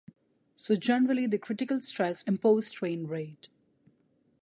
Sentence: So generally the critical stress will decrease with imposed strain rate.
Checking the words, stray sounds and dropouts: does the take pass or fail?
fail